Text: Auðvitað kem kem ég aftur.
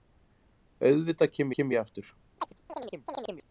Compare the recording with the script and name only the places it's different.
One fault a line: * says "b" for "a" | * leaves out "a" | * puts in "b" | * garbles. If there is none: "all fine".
all fine